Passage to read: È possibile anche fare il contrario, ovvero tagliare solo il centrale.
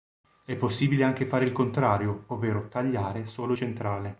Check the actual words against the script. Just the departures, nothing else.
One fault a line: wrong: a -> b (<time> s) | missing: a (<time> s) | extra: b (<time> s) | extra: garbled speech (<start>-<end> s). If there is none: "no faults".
missing: il (3.5 s)